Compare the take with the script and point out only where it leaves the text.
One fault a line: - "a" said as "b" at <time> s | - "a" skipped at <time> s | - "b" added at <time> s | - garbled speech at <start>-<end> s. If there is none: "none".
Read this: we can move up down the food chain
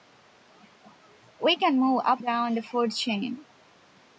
none